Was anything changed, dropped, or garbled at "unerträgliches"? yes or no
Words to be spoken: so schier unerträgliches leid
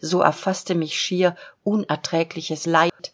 no